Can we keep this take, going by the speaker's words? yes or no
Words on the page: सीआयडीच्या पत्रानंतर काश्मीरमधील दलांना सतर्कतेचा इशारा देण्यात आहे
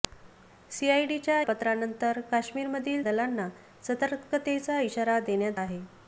yes